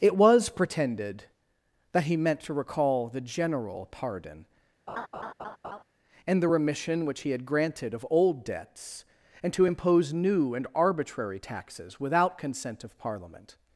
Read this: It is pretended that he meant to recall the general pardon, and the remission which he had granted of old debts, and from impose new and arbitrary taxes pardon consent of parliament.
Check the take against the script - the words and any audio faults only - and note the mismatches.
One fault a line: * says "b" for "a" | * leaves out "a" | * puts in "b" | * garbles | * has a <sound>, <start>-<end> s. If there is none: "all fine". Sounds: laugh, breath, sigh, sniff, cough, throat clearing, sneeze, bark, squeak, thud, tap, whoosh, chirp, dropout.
* says "was" for "is"
* has a laugh, 4.9-5.8 s
* says "to" for "from"
* says "without" for "pardon"